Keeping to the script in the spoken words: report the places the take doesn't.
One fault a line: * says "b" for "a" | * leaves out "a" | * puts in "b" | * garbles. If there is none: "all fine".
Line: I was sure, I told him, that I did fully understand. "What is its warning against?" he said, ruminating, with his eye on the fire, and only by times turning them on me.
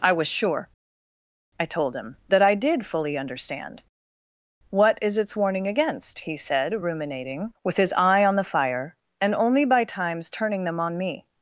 all fine